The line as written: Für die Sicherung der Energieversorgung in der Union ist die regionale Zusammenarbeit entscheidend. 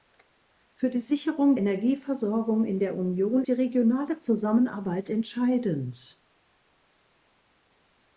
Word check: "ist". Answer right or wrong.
wrong